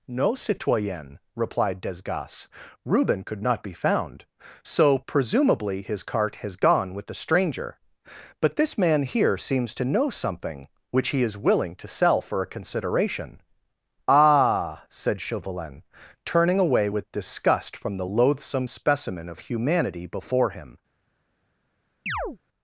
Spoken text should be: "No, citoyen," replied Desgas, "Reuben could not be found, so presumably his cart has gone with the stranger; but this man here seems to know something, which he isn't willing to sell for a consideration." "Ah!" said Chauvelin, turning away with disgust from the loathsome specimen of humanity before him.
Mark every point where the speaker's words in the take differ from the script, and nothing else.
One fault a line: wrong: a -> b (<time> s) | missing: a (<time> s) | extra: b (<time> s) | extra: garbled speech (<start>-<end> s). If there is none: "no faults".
wrong: isn't -> is (11.2 s)